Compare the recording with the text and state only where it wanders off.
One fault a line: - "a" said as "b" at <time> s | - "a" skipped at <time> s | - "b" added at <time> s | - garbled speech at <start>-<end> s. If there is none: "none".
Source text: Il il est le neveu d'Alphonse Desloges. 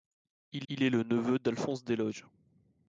none